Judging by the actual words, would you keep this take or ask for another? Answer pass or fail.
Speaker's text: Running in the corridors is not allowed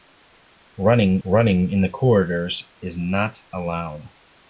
fail